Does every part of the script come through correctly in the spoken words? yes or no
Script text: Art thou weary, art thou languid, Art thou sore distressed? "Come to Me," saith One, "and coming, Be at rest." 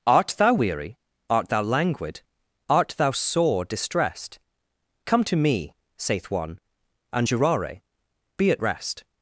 no